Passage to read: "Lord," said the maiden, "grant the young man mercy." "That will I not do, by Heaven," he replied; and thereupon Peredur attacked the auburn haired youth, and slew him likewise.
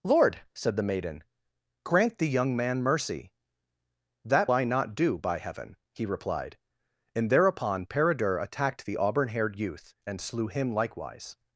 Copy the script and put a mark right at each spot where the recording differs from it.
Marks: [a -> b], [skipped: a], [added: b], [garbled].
"Lord," said the maiden, "grant the young man mercy." "That [skipped: will] I not do, by Heaven," he replied; and thereupon Peredur attacked the auburn haired youth, and slew him likewise.